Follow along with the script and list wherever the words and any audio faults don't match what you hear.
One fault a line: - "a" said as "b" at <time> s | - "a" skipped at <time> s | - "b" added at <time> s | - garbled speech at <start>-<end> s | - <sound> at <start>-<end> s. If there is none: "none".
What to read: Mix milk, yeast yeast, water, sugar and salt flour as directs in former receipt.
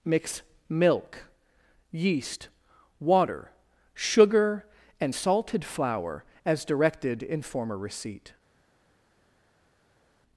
- "yeast" skipped at 2.5 s
- "salt" said as "salted" at 5.1 s
- "directs" said as "directed" at 6.7 s